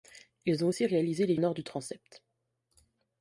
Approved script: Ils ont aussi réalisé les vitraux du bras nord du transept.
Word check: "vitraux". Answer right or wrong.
wrong